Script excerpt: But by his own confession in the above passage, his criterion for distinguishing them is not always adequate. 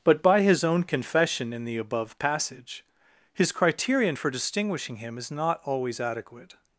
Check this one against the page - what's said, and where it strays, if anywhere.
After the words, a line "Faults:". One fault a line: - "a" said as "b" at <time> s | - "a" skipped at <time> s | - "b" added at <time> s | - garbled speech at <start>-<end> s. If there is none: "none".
But by his own confession in the above passage, his criterion for distinguishing him is not always adequate.
Faults:
- "them" said as "him" at 5.0 s